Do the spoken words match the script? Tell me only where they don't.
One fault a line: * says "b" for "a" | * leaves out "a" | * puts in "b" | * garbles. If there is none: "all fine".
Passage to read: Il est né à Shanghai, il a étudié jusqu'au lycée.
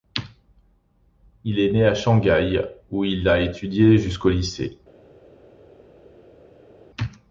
* puts in "où"